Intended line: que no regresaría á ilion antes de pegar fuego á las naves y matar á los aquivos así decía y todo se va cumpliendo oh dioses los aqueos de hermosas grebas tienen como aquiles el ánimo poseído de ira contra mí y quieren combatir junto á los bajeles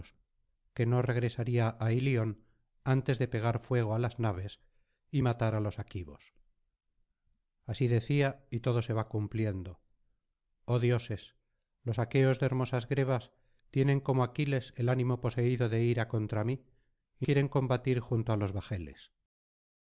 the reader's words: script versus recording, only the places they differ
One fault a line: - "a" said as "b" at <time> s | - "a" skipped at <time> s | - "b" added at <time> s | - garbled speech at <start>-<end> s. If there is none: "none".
none